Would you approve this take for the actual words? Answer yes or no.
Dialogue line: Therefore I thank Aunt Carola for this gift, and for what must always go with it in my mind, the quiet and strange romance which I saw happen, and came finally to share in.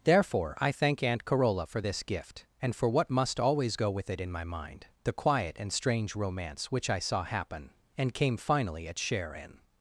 no